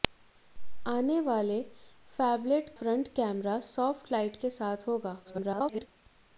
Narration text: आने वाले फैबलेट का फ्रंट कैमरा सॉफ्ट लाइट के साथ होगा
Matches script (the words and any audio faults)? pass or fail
fail